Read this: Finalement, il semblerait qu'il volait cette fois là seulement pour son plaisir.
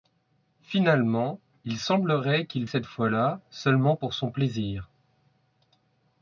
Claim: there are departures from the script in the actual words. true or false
true